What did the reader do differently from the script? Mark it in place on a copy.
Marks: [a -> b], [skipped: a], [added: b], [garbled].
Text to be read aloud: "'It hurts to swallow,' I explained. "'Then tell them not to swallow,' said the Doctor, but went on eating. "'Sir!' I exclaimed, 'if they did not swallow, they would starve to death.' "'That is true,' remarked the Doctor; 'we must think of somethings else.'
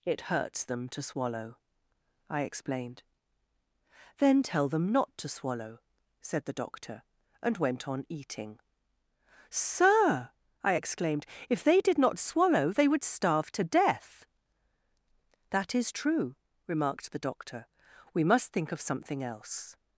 "'It hurts [added: them] to swallow,' I explained. "'Then tell them not to swallow,' said the Doctor, [but -> and] went on eating. "'Sir!' I exclaimed, 'if they did not swallow, they would starve to death.' "'That is true,' remarked the Doctor; 'we must think of [somethings -> something] else.'